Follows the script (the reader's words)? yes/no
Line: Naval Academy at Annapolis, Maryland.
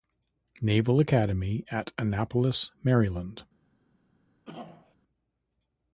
yes